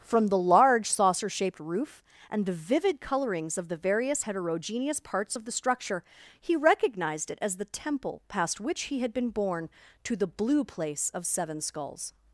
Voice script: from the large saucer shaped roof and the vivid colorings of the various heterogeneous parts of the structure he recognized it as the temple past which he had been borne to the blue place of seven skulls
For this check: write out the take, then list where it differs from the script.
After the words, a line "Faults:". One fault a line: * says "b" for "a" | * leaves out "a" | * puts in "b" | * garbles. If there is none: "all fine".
from the large saucer shaped roof and the vivid colorings of the various heterogeneous parts of the structure he recognized it as the temple past which he had been borne to the blue place of seven skulls
Faults:
all fine